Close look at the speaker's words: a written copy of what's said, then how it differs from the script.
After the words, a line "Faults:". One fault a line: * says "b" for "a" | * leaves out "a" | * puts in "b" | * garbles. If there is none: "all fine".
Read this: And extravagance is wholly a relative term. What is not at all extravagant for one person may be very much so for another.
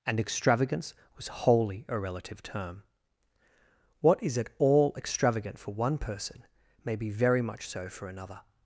And extravagance was wholly a relative term. What is at all extravagant for one person may be very much so for another.
Faults:
* says "was" for "is"
* leaves out "not"